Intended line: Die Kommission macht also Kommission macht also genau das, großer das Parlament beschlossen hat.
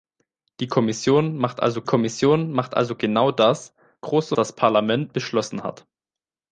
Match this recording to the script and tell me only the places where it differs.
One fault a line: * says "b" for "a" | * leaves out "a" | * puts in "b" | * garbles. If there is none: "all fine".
all fine